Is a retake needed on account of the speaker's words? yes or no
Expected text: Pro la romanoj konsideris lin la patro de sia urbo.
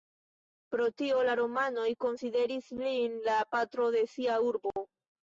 yes